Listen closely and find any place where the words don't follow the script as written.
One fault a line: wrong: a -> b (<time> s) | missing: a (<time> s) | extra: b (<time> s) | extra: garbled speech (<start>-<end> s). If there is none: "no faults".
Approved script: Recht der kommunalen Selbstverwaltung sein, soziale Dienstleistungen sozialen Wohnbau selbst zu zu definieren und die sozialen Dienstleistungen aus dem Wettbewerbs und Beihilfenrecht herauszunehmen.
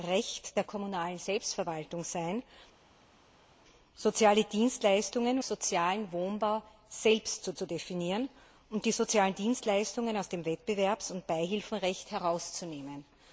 no faults